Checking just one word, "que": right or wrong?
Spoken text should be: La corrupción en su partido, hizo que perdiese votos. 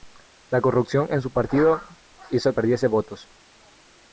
wrong